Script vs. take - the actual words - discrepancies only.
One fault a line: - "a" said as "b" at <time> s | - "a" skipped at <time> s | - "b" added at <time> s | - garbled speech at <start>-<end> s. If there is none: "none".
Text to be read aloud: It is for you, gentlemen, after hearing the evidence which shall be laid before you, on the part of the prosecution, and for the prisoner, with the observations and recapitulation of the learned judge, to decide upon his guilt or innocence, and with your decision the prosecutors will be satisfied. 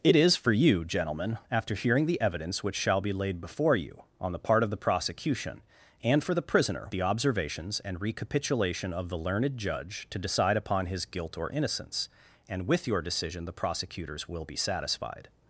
- "with" skipped at 6.9 s